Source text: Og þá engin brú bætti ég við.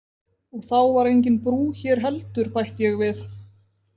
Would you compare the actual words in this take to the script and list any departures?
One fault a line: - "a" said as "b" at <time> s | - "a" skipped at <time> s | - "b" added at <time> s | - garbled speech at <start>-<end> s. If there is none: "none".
- "var" added at 0.9 s
- "hér heldur" added at 1.8 s